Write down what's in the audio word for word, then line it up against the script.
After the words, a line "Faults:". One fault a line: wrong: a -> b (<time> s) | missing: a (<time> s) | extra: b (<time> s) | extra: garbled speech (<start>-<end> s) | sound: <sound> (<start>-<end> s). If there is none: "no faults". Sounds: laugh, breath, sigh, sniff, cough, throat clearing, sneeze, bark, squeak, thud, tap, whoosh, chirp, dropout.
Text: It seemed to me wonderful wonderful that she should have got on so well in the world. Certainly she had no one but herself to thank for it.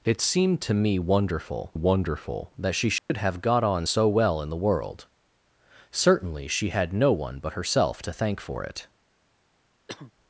It seemed to me wonderful wonderful that she should have got on so well in the world. Certainly she had no one but herself to thank for it.
Faults:
sound: dropout (3.0-3.1 s)
sound: cough (9.9-10.1 s)